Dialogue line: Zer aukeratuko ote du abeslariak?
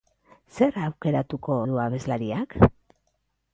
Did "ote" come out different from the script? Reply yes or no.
yes